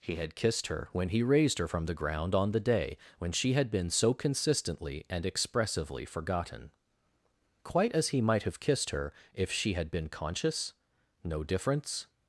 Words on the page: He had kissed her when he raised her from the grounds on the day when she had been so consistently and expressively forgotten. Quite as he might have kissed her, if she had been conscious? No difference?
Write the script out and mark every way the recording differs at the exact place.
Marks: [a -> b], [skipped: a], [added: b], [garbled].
He had kissed her when he raised her from the [grounds -> ground] on the day when she had been so consistently and expressively forgotten. Quite as he might have kissed her, if she had been conscious? No difference?